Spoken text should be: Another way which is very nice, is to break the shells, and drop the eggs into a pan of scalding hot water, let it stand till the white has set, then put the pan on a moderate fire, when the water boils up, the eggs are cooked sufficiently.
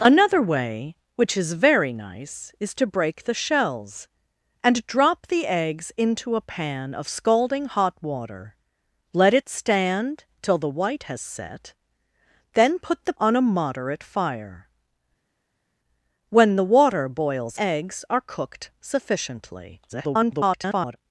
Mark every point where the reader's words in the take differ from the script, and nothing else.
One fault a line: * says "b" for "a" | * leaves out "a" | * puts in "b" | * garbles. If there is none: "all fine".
* leaves out "pan"
* leaves out "up the"
* garbles